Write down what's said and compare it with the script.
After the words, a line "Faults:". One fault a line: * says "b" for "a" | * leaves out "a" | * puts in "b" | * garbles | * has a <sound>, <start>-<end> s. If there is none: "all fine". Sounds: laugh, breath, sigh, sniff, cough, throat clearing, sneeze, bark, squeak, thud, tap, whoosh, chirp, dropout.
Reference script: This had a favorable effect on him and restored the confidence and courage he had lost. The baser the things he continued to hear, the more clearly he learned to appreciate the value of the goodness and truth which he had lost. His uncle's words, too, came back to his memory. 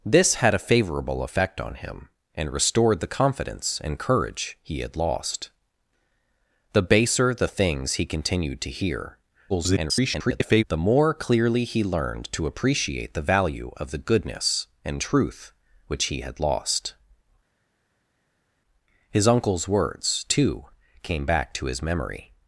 This had a favorable effect on him and restored the confidence and courage he had lost. The baser the things he continued to hear, [garbled] the more clearly he learned to appreciate the value of the goodness and truth which he had lost. His uncle's words, too, came back to his memory.
Faults:
* garbles